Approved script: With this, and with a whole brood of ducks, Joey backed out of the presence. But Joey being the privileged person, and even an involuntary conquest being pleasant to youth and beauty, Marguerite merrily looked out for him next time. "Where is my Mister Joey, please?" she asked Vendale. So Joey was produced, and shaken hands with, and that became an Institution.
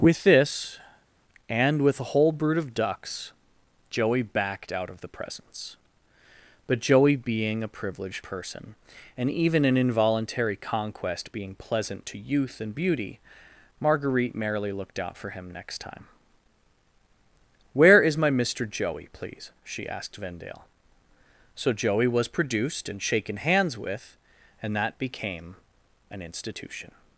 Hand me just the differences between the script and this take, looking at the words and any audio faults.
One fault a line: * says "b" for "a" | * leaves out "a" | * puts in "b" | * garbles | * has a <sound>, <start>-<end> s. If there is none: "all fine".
* says "a" for "the"